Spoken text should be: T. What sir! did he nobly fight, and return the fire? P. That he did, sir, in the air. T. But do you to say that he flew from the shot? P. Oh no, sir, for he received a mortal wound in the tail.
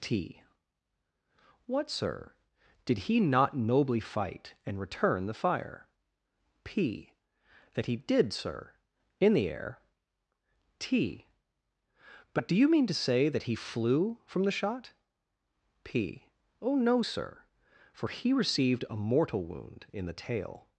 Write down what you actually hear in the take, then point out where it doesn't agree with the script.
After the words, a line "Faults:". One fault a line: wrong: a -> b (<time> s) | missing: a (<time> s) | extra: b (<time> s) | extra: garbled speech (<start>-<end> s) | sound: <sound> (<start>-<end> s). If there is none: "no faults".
T. What sir! did he not nobly fight, and return the fire? P. That he did, sir, in the air. T. But do you mean to say that he flew from the shot? P. Oh no, sir, for he received a mortal wound in the tail.
Faults:
extra: not (3.2 s)
extra: mean (12.7 s)